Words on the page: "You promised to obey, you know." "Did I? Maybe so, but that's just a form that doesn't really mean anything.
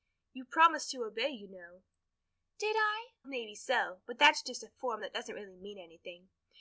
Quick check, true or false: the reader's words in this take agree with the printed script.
true